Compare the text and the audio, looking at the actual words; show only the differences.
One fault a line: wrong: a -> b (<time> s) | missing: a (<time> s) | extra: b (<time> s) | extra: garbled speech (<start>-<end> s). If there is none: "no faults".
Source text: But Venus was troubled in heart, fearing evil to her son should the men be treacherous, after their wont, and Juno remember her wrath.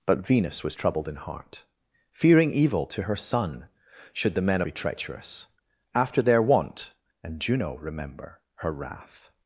no faults